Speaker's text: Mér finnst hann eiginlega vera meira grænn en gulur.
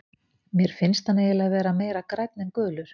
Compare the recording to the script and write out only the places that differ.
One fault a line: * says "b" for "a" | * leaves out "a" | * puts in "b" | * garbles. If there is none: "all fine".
all fine